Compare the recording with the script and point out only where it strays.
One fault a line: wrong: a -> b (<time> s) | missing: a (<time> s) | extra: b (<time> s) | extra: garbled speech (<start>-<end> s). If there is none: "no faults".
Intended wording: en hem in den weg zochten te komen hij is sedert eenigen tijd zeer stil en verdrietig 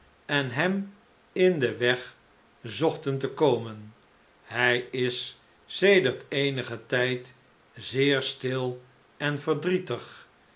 no faults